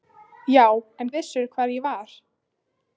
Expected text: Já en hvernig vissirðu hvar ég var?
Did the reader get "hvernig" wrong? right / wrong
wrong